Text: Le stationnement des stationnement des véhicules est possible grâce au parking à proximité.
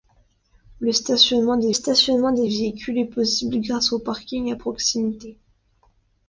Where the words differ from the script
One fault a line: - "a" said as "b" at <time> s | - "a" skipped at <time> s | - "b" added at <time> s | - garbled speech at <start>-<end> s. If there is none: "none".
none